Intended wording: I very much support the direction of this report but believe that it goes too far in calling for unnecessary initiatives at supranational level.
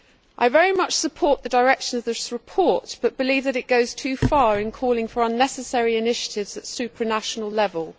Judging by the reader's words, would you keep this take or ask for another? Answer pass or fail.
pass